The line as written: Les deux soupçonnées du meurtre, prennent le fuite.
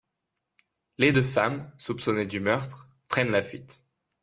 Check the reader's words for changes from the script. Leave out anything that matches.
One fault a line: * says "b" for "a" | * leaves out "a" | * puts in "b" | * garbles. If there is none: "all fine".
* puts in "femmes"
* says "la" for "le"